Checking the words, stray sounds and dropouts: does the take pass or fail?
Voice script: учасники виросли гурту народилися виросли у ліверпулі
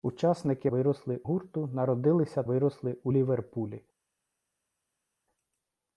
pass